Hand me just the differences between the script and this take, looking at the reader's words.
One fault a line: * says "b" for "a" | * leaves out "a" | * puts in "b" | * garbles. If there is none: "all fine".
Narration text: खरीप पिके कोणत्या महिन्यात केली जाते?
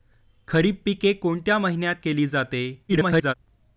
* garbles